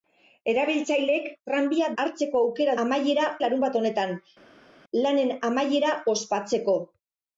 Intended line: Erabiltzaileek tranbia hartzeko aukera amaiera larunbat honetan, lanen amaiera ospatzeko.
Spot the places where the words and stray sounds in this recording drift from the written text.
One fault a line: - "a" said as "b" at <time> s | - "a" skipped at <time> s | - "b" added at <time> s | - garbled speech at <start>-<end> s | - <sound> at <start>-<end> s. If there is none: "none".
none